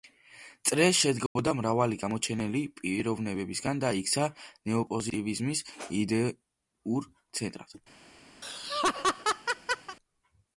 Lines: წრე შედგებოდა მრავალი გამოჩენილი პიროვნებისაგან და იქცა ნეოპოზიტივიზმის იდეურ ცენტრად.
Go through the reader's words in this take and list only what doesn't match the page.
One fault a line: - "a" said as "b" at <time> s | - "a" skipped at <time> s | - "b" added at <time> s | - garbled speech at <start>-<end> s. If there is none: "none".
none